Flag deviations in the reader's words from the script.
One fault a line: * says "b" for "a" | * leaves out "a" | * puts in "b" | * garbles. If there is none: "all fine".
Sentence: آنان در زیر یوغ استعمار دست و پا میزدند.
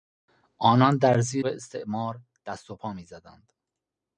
* leaves out "یوغ"